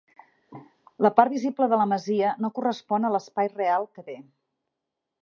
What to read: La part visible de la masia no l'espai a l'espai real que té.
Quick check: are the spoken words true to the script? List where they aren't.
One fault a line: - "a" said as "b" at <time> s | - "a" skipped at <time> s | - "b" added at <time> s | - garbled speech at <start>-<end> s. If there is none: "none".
- "l'espai" said as "correspon" at 2.6 s